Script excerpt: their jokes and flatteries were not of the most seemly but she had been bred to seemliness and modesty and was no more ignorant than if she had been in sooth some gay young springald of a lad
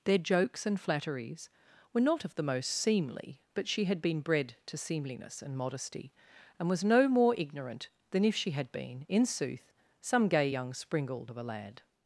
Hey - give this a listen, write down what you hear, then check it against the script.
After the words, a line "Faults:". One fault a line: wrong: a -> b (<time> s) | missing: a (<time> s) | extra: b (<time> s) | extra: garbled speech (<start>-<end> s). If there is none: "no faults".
their jokes and flatteries were not of the most seemly but she had been bred to seemliness and modesty and was no more ignorant than if she had been in sooth some gay young springald of a lad
Faults:
no faults